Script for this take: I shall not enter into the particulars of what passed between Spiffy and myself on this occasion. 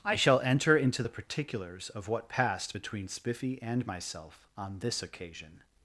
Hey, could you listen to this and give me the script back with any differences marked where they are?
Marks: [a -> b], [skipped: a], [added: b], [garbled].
I shall [skipped: not] enter into the particulars of what passed between Spiffy and myself on this occasion.